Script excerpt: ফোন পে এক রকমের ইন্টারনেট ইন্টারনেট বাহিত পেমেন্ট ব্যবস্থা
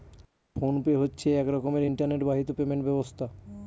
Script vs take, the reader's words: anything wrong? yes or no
yes